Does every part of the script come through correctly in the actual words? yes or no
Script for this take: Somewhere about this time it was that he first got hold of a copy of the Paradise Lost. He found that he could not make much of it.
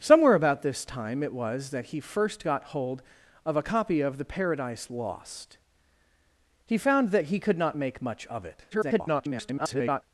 no